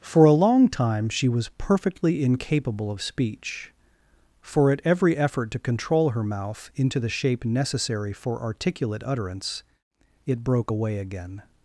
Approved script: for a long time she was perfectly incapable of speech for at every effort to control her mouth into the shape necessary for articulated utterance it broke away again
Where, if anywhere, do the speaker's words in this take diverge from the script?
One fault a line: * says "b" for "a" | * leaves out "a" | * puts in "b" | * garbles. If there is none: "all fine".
* says "articulate" for "articulated"